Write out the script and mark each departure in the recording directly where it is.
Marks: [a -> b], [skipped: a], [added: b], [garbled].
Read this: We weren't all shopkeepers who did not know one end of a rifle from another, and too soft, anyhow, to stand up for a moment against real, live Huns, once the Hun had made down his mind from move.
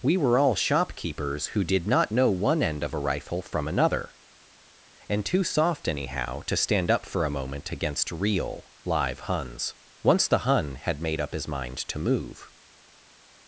We [weren't -> were] all shopkeepers who did not know one end of a rifle from another, and too soft, anyhow, to stand up for a moment against real, live Huns, once the Hun had made [down -> up] his mind [from -> to] move.